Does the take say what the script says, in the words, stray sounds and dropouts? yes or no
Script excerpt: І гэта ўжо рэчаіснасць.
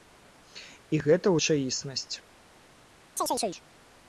no